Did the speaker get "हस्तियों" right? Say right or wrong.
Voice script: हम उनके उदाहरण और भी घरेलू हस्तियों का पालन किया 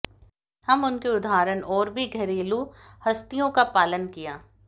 right